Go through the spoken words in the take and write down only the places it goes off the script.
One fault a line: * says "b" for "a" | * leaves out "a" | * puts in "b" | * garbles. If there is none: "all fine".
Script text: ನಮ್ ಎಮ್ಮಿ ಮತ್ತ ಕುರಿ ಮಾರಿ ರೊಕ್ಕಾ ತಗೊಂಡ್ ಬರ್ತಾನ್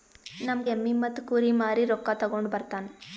all fine